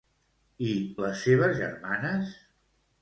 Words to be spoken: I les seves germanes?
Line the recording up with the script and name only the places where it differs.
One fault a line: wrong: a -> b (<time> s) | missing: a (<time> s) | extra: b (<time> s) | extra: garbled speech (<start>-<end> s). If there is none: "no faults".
no faults